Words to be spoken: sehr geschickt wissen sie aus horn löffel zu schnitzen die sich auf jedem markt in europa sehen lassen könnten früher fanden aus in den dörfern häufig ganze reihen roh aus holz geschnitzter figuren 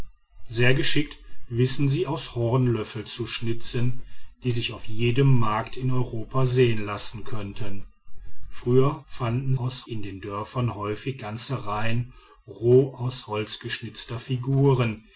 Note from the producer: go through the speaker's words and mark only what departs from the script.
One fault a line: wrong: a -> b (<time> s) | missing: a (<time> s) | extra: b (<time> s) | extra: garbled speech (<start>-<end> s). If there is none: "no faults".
no faults